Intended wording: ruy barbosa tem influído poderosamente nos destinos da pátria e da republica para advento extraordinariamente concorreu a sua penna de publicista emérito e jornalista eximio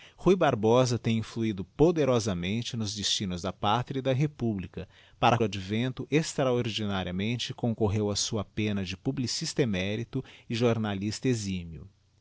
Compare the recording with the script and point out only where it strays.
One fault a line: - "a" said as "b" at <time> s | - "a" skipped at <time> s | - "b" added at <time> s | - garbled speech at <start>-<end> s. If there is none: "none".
none